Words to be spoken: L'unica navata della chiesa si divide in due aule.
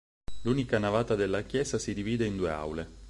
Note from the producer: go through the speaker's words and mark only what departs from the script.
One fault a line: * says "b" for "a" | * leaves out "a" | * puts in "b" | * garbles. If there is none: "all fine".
all fine